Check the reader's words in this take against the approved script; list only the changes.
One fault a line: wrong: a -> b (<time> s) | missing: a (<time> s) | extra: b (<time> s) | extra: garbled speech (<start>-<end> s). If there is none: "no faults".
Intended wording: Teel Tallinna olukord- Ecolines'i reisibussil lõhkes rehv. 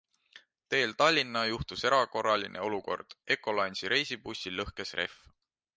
extra: juhtus erakorraline (1.5 s)